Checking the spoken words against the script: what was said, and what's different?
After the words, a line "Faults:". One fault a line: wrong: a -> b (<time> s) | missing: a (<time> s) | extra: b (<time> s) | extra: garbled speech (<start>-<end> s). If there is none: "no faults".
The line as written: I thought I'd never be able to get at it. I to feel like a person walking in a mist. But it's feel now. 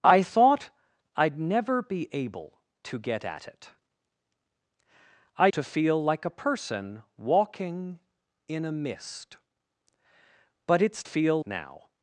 I thought I'd never be able to get at it. I to feel like a person walking in a mist. But it's feel now.
Faults:
no faults